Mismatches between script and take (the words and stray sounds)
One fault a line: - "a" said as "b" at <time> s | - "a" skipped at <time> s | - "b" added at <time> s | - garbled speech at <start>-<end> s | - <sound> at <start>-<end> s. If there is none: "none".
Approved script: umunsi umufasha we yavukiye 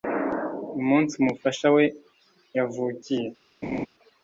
- laugh at 3.6-3.9 s